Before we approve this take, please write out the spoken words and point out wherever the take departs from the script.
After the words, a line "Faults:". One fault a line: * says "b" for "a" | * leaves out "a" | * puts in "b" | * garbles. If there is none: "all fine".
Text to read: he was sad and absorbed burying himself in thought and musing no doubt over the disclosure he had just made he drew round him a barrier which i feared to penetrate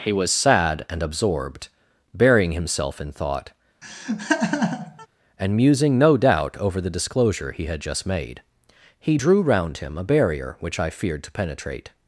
he was sad and absorbed burying himself in thought and musing no doubt over the disclosure he had just made he drew round him a barrier which i feared to penetrate
Faults:
all fine